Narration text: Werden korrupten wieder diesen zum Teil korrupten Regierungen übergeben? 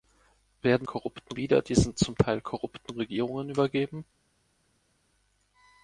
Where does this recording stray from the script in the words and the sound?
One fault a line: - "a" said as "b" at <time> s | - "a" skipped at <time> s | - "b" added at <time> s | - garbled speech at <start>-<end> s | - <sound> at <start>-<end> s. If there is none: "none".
none